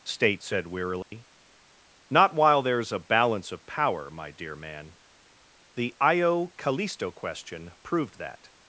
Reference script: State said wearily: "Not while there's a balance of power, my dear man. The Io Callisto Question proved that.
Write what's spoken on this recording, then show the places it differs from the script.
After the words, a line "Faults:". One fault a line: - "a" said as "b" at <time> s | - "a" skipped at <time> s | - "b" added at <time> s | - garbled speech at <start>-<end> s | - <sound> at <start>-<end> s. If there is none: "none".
State said wearily: "Not while there's a balance of power, my dear man. The Io Callisto Question proved that.
Faults:
- dropout at 1.0-1.1 s